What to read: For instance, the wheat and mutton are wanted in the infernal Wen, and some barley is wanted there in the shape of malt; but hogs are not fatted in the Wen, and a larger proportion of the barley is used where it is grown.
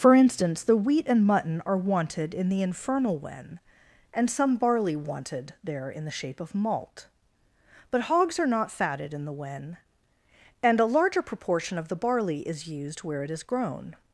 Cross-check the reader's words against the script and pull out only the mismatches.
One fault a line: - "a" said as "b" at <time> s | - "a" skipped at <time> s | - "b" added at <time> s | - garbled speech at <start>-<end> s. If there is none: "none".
- "is" skipped at 5.0 s